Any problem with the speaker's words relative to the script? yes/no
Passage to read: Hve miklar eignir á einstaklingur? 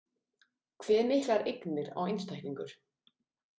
no